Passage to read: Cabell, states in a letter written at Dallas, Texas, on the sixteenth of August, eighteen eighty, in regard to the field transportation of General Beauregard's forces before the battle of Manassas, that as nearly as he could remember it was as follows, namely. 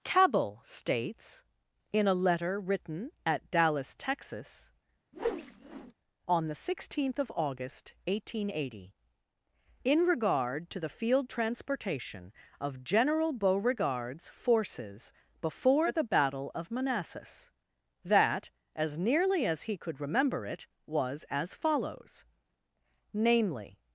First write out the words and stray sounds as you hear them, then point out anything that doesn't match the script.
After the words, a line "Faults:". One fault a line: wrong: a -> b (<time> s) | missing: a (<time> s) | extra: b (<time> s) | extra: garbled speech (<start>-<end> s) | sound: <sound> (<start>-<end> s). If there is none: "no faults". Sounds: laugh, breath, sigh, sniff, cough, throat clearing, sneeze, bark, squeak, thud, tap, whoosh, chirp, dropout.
Cabell, states in a letter written at Dallas, Texas, on the sixteenth of August, eighteen eighty, in regard to the field transportation of General Beauregard's forces before the battle of Manassas, that as nearly as he could remember it was as follows, namely.
Faults:
sound: whoosh (5.1-5.9 s)